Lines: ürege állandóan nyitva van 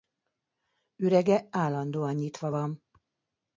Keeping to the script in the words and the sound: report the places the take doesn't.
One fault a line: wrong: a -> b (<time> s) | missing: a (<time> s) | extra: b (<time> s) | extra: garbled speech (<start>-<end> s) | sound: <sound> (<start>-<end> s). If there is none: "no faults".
no faults